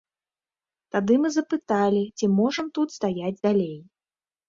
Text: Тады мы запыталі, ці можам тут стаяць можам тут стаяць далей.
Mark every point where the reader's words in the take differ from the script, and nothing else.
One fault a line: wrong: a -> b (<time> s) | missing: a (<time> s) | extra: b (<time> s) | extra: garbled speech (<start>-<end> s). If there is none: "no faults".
missing: можам тут стаяць (3.4 s)